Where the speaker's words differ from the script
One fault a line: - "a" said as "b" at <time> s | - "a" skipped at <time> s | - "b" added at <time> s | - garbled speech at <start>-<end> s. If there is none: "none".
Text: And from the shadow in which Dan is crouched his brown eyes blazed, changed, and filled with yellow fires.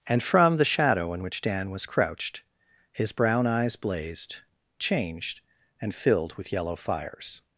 - "is" said as "was" at 1.7 s